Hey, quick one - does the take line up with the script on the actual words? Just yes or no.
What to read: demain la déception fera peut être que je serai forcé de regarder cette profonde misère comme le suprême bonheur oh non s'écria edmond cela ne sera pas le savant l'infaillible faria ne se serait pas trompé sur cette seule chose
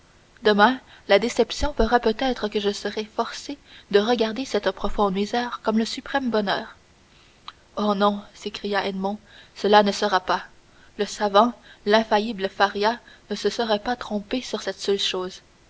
yes